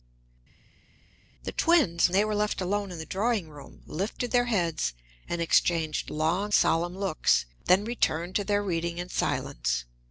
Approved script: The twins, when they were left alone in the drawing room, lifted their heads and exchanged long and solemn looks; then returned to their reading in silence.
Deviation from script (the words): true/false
true